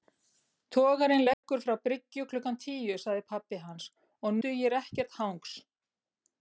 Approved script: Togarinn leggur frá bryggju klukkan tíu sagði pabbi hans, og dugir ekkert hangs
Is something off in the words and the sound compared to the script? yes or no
yes